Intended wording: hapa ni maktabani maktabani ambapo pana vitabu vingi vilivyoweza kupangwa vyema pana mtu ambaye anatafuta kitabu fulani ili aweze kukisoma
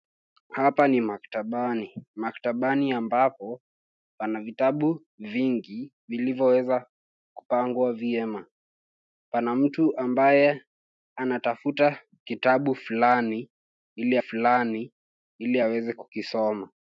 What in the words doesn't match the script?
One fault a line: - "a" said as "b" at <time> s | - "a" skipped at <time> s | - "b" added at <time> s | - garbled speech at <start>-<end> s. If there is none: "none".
- "fulani ili" added at 14.2 s